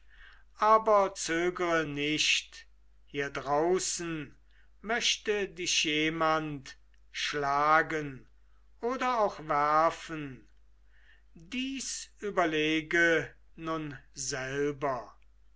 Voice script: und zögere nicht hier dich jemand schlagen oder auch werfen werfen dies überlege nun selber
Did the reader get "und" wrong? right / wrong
wrong